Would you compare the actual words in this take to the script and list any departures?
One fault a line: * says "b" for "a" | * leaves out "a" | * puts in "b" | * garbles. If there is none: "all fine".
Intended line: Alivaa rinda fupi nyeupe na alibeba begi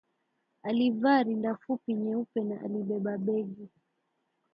all fine